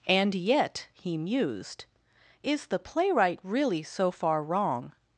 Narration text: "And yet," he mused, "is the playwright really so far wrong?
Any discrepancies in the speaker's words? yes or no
no